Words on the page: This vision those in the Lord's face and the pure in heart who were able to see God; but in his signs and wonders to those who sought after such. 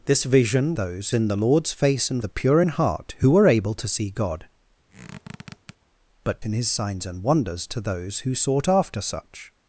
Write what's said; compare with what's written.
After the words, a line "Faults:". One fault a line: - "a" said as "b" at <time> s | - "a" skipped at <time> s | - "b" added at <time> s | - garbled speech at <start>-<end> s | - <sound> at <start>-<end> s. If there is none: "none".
This vision those in the Lord's face and the pure in heart who were able to see God; but in his signs and wonders to those who sought after such.
Faults:
- squeak at 4.9-5.8 s